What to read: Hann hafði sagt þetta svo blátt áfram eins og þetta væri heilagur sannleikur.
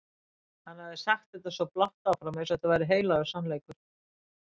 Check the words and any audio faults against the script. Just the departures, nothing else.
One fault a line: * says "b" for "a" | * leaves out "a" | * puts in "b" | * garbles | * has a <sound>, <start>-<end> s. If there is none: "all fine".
all fine